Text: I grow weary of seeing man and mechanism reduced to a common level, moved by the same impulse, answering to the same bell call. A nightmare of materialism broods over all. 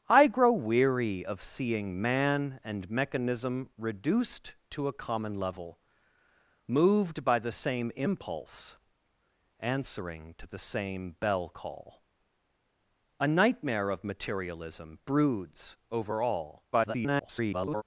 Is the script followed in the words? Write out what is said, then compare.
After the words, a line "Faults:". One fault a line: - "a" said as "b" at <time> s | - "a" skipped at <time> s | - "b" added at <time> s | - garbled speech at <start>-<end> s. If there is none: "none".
I grow weary of seeing man and mechanism reduced to a common level, moved by the same impulse, answering to the same bell call. A nightmare of materialism broods over all. [garbled]
Faults:
- garbled speech at 16.7-17.8 s